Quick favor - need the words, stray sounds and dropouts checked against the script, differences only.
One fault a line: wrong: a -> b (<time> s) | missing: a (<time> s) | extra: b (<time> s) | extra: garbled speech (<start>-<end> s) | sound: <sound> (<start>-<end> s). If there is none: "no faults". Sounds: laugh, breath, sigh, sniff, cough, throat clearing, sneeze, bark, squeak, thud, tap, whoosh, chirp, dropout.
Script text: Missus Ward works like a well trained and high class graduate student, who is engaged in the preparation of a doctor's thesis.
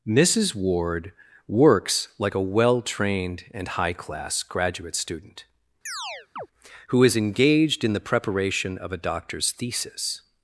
sound: chirp (5.9-6.5 s)